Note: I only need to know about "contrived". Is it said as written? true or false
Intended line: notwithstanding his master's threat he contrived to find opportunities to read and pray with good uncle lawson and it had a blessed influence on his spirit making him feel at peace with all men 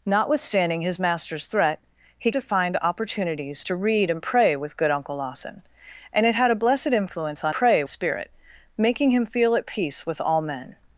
false